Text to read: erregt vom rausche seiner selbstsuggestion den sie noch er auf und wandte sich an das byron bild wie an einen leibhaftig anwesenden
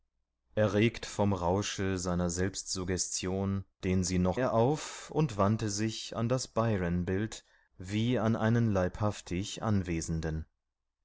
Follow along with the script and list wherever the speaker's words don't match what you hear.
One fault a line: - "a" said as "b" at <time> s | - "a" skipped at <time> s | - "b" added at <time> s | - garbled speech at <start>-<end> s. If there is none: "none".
none